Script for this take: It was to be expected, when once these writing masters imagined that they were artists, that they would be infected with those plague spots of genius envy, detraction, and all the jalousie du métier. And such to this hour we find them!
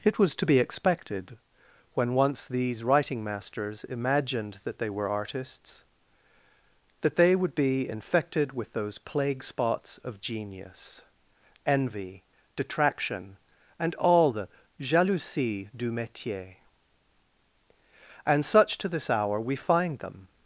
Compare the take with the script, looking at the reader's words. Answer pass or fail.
pass